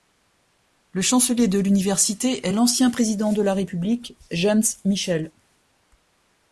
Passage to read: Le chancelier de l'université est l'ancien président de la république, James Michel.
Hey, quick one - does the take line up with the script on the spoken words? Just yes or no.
yes